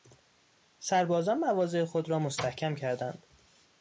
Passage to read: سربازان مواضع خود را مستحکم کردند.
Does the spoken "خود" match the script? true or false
true